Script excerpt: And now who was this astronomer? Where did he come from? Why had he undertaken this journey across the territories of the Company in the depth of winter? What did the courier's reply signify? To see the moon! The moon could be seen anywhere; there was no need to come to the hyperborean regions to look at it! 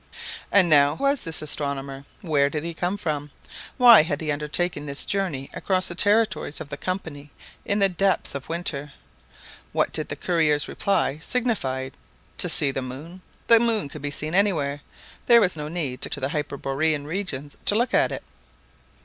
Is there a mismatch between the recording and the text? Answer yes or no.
yes